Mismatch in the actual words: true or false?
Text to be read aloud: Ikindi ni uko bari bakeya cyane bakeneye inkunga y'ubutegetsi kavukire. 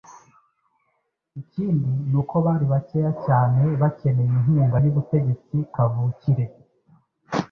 false